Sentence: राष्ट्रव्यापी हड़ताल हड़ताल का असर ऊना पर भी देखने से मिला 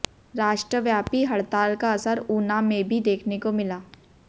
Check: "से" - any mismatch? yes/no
yes